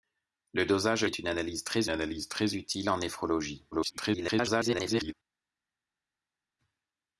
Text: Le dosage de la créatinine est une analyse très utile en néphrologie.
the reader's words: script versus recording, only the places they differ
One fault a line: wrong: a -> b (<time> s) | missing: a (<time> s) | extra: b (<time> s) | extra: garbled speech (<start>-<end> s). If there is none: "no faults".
wrong: la créatinine est une -> est une analyse très (1.0 s)
extra: garbled speech (3.7-5.1 s)